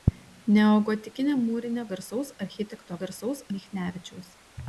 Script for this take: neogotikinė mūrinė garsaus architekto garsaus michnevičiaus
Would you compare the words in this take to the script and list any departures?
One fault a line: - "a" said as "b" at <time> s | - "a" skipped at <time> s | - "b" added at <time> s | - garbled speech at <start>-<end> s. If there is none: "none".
none